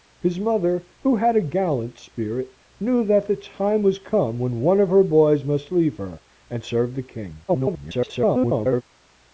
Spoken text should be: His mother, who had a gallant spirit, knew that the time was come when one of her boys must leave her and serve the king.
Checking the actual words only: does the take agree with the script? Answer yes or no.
no